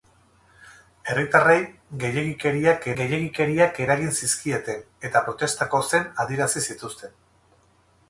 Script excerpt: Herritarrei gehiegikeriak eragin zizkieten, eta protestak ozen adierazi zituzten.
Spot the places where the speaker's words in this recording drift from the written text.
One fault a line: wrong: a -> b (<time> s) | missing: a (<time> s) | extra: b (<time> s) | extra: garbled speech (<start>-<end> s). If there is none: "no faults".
extra: gehiegikeriak (3.0 s)